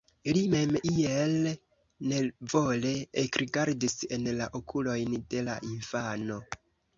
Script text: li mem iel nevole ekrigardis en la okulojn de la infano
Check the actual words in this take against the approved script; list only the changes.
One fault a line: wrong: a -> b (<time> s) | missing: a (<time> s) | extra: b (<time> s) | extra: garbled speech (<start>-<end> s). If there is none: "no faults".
no faults